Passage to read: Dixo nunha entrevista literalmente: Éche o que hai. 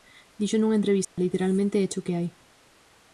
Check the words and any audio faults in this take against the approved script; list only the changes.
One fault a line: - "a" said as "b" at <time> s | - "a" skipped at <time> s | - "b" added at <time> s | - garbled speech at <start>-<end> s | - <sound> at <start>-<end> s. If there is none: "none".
- dropout at 1.0-1.2 s